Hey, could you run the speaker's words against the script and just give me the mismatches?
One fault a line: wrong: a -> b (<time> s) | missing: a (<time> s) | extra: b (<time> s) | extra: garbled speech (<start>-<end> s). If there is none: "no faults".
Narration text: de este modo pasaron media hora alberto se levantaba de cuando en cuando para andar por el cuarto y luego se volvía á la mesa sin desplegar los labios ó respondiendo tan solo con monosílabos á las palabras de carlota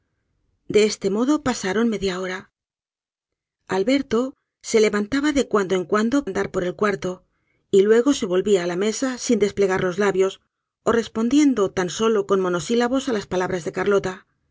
missing: para (6.2 s)